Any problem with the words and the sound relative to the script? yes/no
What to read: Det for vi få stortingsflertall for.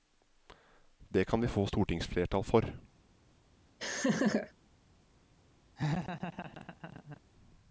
yes